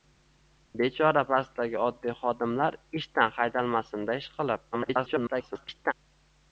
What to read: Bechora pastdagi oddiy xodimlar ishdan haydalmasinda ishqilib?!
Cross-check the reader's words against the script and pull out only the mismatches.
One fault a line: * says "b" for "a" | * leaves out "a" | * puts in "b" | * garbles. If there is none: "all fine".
* garbles